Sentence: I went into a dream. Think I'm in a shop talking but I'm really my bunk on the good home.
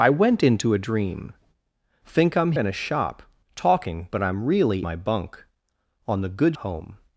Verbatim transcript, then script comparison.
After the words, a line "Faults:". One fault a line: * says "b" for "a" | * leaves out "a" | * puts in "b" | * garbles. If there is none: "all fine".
I went into a dream. Think I'm in a shop talking but I'm really my bunk on the good home.
Faults:
all fine